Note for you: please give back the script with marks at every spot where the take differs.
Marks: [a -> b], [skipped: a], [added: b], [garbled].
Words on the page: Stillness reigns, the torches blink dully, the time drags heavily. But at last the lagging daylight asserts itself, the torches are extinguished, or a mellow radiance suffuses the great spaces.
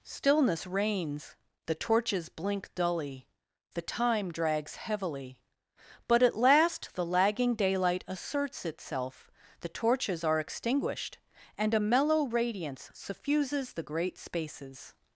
Stillness reigns, the torches blink dully, the time drags heavily. But at last the lagging daylight asserts itself, the torches are extinguished, [or -> and] a mellow radiance suffuses the great spaces.